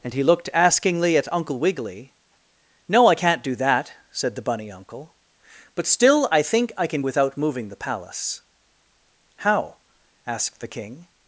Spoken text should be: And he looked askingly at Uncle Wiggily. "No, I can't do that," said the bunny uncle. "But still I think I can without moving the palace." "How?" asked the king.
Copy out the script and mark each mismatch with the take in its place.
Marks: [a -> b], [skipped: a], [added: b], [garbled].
And he looked askingly at Uncle Wiggily. "No, I can't do that," said the bunny uncle. "But still I think I can without moving the palace." "How?" asked the king.